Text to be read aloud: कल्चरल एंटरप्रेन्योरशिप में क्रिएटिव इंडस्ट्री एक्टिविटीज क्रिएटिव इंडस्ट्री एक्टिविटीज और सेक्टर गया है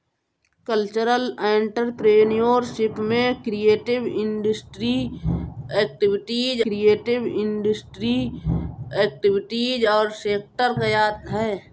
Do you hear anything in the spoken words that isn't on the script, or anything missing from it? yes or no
no